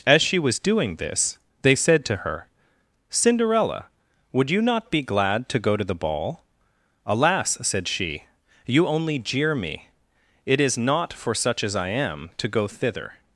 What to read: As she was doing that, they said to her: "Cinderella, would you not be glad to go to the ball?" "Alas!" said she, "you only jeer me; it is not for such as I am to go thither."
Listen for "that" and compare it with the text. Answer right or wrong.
wrong